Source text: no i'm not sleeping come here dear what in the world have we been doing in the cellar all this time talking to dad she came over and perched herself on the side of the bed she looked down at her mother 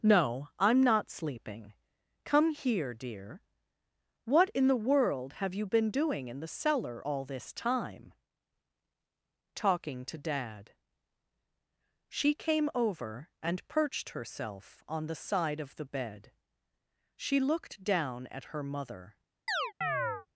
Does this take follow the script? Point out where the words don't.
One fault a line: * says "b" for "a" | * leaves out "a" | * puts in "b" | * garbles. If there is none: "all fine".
* says "you" for "we"